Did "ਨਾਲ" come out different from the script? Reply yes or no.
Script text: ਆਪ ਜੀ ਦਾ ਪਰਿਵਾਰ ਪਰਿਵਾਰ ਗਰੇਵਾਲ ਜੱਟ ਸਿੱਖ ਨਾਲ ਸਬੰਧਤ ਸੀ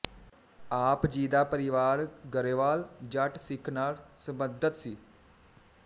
no